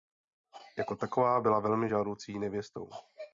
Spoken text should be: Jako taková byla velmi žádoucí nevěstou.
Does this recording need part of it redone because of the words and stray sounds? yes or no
no